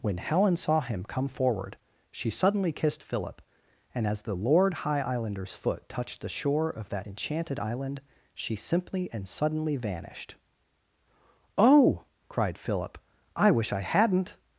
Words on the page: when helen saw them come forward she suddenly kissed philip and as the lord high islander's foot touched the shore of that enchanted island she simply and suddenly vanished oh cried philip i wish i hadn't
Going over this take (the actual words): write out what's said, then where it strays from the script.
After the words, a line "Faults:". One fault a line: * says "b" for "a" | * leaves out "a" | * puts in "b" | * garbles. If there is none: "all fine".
when helen saw him come forward she suddenly kissed philip and as the lord high islander's foot touched the shore of that enchanted island she simply and suddenly vanished oh cried philip i wish i hadn't
Faults:
* says "him" for "them"